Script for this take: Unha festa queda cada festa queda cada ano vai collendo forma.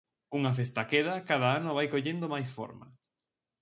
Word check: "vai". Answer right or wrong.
right